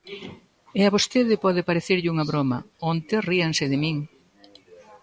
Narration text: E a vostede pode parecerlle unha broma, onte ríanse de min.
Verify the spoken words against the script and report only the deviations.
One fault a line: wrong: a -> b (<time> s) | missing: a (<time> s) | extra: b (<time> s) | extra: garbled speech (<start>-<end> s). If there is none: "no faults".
no faults